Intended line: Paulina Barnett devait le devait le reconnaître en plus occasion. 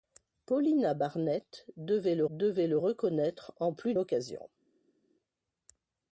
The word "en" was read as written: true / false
true